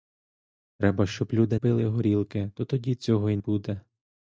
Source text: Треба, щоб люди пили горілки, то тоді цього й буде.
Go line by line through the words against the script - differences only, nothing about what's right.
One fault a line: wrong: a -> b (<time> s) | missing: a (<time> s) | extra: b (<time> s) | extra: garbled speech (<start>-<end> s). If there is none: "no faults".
no faults